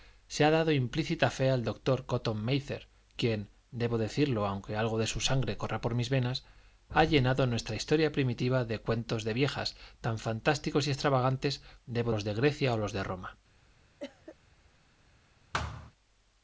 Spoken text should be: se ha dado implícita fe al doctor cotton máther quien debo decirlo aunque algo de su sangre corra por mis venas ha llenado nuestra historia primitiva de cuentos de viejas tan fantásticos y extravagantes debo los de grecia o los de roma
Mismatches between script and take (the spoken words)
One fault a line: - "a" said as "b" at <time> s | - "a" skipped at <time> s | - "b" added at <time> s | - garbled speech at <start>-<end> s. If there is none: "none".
none